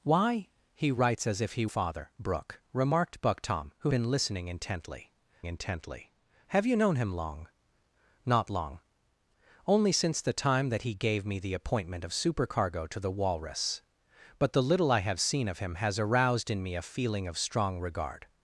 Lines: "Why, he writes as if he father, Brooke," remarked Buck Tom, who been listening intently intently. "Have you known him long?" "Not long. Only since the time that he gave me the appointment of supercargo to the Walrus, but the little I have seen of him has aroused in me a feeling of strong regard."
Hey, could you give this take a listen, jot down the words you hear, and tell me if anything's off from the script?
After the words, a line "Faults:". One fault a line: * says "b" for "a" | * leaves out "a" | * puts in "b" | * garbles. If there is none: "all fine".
"Why, he writes as if he father, Brooke," remarked Buck Tom, who been listening intently intently. "Have you known him long?" "Not long. Only since the time that he gave me the appointment of supercargo to the Walrus, but the little I have seen of him has aroused in me a feeling of strong regard."
Faults:
all fine